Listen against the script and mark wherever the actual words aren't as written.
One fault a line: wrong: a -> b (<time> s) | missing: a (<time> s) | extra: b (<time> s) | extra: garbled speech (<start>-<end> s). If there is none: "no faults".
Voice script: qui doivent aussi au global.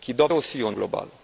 no faults